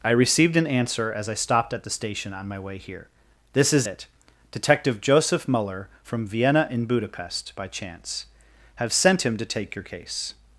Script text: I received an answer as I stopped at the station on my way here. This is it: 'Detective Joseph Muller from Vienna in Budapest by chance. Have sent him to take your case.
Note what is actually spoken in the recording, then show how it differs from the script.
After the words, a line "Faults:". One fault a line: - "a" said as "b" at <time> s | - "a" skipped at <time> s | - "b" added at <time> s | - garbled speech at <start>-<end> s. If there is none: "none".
I received an answer as I stopped at the station on my way here. This is it: 'Detective Joseph Muller from Vienna in Budapest by chance. Have sent him to take your case.
Faults:
none